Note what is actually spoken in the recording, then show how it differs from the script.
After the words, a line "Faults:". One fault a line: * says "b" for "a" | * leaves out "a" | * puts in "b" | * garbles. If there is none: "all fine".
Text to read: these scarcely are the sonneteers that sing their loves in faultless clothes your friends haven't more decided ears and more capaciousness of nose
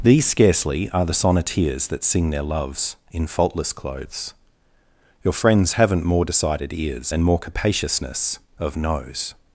these scarcely are the sonneteers that sing their loves in faultless clothes your friends haven't more decided ears and more capaciousness of nose
Faults:
all fine